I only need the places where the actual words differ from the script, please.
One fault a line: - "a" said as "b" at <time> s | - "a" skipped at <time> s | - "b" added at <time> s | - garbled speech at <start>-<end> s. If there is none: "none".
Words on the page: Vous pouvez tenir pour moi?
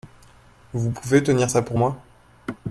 - "ça" added at 1.5 s